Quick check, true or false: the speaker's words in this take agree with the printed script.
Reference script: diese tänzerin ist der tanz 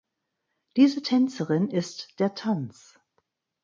true